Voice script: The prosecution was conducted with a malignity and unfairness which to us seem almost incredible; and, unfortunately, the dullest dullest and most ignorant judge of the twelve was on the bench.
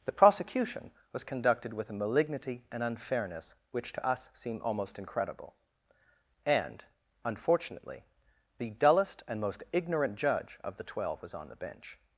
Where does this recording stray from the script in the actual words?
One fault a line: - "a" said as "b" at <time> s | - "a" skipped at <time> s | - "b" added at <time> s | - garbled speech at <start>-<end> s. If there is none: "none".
- "dullest" skipped at 9.2 s